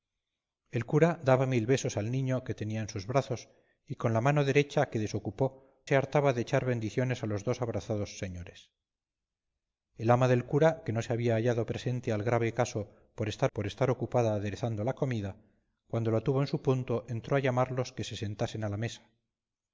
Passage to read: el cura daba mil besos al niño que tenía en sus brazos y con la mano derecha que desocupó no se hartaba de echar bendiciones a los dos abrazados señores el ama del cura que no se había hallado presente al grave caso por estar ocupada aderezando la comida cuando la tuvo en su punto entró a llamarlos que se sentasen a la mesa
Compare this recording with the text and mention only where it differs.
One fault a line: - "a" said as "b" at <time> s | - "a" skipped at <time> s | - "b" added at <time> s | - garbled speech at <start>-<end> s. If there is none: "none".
- "no" skipped at 5.7 s
- "por estar" added at 13.5 s